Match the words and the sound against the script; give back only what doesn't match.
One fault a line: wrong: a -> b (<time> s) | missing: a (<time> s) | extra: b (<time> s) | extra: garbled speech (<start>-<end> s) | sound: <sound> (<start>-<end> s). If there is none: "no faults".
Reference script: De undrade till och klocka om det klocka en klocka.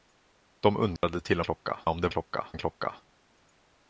sound: dropout (1.0-1.0 s)